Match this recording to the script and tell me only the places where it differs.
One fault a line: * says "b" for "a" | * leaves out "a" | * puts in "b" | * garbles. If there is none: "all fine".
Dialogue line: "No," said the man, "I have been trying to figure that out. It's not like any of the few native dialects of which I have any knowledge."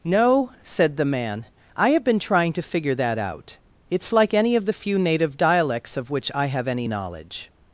* leaves out "not"